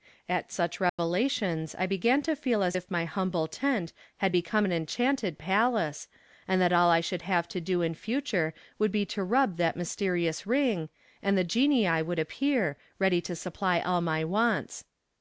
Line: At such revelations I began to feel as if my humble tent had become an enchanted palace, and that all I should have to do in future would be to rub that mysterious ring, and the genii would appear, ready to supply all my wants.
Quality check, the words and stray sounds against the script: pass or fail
fail